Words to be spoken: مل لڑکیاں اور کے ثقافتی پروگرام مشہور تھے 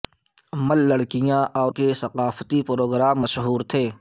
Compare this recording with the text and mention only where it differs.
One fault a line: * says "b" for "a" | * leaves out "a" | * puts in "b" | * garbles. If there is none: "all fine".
all fine